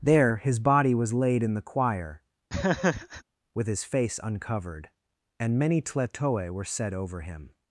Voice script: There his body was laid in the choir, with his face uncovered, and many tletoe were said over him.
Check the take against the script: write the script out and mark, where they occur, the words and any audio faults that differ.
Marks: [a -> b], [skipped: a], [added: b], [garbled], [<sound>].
There his body was laid in the choir, [laugh] with his face uncovered, and many tletoe were said over him.